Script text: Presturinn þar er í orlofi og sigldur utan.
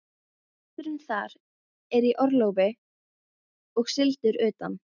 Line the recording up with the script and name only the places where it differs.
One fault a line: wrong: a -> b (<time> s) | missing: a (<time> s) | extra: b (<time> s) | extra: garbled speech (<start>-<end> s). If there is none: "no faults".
no faults